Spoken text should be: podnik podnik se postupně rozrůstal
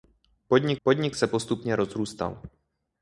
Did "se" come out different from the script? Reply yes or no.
no